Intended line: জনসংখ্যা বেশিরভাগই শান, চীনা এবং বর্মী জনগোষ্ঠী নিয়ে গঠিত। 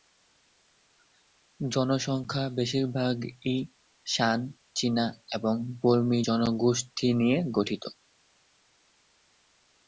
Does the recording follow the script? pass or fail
pass